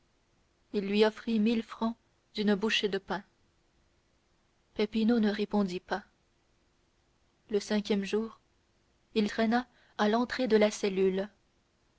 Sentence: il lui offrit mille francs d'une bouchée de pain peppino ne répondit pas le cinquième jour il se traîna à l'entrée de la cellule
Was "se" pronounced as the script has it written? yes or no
no